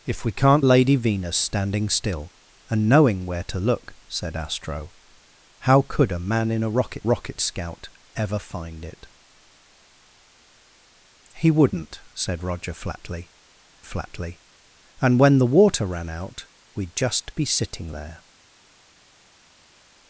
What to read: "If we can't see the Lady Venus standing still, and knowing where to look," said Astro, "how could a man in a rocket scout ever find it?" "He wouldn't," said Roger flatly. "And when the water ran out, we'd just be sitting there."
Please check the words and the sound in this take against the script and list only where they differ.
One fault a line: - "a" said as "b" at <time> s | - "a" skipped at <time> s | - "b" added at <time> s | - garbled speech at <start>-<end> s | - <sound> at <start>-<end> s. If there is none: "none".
- "see the" skipped at 0.7 s
- "rocket" added at 7.0 s
- "flatly" added at 13.8 s